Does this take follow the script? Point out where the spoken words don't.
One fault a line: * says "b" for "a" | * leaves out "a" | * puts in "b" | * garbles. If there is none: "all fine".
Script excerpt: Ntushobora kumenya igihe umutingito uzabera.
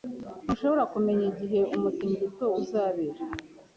all fine